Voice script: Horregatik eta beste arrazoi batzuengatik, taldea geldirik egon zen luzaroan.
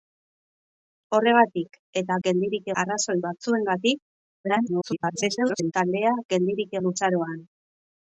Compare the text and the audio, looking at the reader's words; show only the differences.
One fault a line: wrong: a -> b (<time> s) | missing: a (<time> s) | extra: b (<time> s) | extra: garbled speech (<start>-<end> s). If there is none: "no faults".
wrong: beste -> geldirik (2.3 s)
extra: garbled speech (4.4-5.7 s)
missing: egon zen (6.8 s)